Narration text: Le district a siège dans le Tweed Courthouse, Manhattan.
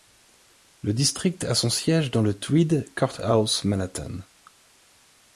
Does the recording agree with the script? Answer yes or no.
no